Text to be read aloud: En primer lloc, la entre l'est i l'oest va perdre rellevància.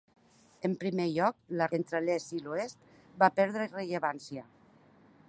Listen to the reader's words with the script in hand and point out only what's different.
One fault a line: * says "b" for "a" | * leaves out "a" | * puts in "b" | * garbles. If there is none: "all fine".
all fine